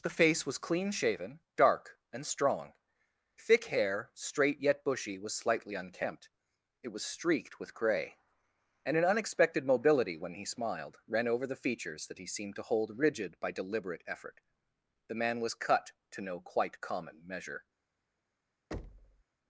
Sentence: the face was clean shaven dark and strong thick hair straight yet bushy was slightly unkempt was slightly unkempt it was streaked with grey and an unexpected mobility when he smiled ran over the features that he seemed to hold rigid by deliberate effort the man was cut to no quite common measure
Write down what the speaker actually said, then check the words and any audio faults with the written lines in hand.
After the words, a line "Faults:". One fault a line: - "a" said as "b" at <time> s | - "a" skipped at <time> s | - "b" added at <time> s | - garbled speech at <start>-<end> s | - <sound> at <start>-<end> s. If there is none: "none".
the face was clean shaven dark and strong thick hair straight yet bushy was slightly unkempt it was streaked with grey and an unexpected mobility when he smiled ran over the features that he seemed to hold rigid by deliberate effort the man was cut to no quite common measure
Faults:
- "was slightly unkempt" skipped at 6.3 s
- thud at 18.7-19.2 s